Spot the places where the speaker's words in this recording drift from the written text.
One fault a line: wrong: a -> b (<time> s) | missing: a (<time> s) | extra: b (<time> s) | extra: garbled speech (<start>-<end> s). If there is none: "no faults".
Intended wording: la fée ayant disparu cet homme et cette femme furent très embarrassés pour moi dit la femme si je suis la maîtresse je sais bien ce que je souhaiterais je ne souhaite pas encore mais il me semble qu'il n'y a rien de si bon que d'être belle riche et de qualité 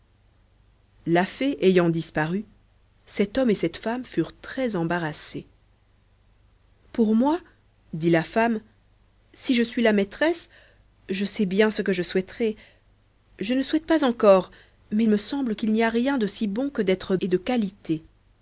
missing: il (15.1 s)
missing: belle riche (17.2 s)